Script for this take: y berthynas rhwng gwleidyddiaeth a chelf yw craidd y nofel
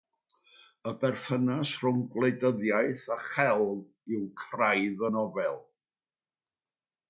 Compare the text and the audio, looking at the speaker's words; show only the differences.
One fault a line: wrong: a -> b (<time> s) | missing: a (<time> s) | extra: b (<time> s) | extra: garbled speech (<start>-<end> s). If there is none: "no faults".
no faults